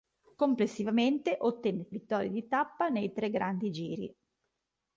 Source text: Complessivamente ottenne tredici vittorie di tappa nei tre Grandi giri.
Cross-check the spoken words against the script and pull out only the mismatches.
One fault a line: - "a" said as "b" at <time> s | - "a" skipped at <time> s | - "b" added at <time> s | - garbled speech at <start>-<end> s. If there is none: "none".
- "tredici" skipped at 1.9 s